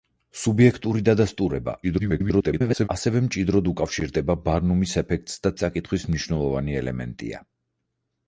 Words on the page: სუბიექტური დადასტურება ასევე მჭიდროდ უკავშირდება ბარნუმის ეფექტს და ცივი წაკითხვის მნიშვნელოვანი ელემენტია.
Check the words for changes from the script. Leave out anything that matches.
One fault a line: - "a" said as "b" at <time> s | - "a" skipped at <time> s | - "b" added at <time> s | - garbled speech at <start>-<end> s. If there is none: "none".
- garbled speech at 1.8-2.9 s
- "ცივი" skipped at 5.5 s